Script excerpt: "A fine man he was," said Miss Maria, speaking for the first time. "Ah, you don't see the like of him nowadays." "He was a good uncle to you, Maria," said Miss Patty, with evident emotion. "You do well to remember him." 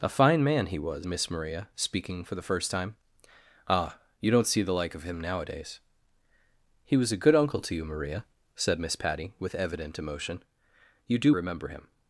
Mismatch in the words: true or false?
true